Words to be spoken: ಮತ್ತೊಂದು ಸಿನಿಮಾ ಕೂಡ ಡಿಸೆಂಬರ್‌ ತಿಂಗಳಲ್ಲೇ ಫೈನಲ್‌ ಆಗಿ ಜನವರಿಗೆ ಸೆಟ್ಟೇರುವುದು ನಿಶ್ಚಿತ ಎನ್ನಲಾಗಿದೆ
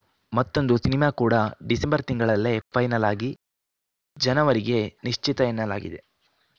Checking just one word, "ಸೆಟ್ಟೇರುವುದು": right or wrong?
wrong